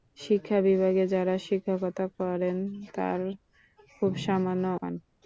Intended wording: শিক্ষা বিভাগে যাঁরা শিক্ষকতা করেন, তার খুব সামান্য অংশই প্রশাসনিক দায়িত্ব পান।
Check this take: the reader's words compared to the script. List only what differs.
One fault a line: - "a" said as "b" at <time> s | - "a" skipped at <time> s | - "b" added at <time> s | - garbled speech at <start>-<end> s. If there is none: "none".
- "অংশই প্রশাসনিক দায়িত্ব" skipped at 4.7 s